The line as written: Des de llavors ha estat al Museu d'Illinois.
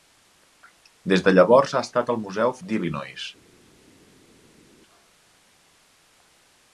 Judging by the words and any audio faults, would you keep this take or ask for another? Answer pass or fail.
pass